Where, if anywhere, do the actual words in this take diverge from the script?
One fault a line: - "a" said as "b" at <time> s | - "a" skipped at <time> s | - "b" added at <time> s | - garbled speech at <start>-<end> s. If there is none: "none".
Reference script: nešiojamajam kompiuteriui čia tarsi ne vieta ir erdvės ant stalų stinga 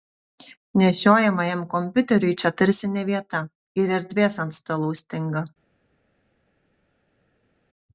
none